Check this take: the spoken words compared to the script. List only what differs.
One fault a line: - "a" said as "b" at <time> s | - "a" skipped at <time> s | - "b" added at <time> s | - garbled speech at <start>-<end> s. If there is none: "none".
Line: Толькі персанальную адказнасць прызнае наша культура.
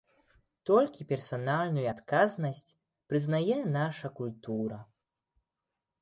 none